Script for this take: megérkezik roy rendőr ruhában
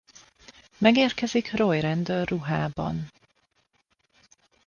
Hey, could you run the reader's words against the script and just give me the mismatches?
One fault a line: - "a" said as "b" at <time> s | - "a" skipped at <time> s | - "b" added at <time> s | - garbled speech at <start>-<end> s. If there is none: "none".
none